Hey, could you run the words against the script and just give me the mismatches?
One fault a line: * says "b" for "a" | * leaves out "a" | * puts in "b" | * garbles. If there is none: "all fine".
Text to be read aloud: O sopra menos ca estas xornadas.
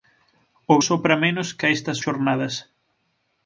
all fine